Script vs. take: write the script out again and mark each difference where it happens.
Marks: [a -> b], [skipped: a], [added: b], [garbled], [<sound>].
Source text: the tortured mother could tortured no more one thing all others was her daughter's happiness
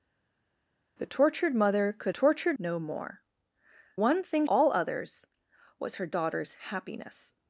the tortured mother could tortured no more one thing all others was her daughter's happiness